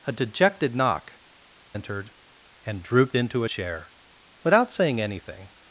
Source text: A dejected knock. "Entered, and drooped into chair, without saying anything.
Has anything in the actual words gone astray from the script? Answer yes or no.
no